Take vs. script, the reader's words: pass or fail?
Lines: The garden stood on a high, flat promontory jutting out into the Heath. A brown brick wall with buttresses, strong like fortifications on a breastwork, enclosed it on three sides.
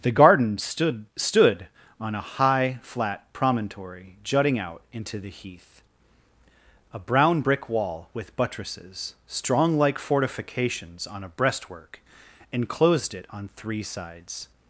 fail